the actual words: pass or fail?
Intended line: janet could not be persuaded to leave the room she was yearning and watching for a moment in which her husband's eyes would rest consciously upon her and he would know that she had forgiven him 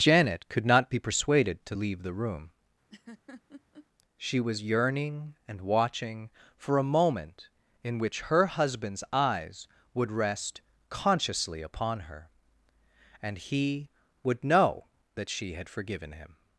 pass